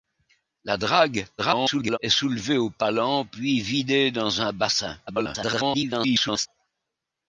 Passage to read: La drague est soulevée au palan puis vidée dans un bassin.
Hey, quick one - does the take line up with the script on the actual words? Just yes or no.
no